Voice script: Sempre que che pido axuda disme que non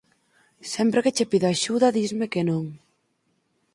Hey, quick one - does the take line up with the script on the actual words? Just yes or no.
yes